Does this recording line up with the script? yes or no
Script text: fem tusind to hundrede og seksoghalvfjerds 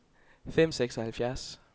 no